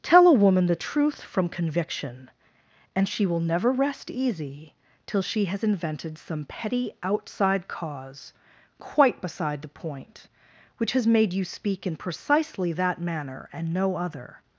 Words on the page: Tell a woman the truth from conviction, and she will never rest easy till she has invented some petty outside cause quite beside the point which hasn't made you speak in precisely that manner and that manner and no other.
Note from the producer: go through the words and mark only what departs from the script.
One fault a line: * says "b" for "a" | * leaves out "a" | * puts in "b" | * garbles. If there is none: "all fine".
* says "has" for "hasn't"
* leaves out "that manner and"